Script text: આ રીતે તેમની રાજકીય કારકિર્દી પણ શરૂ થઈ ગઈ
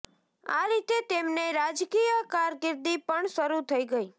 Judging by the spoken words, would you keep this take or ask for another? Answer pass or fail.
pass